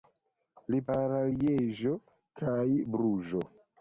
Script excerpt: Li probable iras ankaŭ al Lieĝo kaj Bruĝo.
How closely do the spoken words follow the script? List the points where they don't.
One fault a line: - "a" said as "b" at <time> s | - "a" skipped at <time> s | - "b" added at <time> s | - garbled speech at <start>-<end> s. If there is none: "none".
- "probable iras ankaŭ" skipped at 0.8 s